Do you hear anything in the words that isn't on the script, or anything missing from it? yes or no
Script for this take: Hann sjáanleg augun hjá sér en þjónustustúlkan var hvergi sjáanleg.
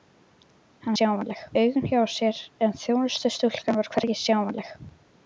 no